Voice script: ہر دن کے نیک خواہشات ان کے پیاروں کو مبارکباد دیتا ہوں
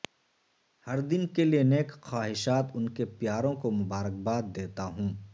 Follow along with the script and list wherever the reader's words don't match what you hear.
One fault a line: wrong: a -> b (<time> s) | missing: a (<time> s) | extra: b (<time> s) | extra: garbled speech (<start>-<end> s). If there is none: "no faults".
extra: لئے (1.4 s)